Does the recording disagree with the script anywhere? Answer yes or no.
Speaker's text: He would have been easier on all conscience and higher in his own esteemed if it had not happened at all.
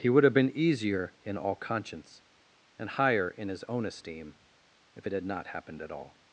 yes